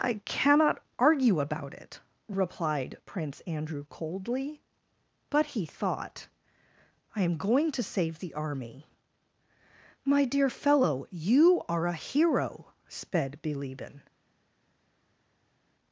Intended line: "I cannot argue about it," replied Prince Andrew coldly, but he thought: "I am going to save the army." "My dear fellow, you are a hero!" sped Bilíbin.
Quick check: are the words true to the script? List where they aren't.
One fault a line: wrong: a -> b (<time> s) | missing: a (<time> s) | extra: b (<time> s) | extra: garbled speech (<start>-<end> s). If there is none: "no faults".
no faults